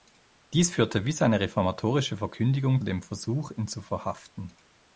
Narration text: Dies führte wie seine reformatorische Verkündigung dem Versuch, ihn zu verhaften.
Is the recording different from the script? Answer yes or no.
no